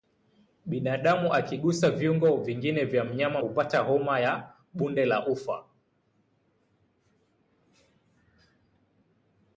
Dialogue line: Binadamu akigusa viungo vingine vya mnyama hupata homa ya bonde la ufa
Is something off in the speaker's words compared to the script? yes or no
no